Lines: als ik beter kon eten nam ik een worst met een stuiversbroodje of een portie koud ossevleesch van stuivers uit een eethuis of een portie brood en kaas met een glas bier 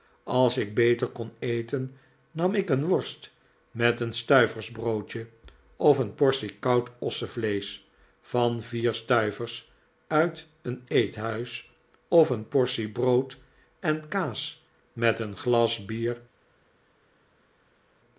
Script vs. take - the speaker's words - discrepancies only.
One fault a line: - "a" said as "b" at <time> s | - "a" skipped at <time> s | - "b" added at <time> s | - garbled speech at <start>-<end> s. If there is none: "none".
- "vier" added at 8.6 s